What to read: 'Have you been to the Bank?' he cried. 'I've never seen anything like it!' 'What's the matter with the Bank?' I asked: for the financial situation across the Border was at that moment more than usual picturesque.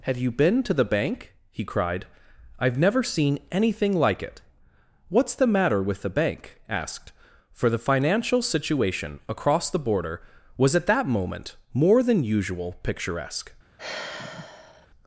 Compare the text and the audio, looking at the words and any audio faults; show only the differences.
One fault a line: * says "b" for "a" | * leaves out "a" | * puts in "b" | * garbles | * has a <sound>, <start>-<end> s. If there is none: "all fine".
* leaves out "I"
* has a sigh, 13.8-14.9 s